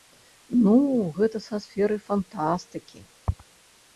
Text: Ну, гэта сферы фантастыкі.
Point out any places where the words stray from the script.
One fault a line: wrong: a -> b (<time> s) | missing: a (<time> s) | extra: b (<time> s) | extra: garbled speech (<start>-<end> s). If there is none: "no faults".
extra: са (1.5 s)